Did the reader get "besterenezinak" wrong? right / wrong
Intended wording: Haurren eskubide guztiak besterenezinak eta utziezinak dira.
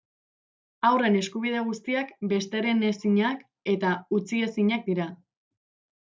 right